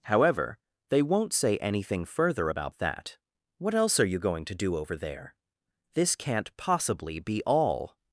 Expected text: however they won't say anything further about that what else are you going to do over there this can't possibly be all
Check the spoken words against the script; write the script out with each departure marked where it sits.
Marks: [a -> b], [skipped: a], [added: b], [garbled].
however they won't say anything further about that what else are you going to do over there this can't possibly be all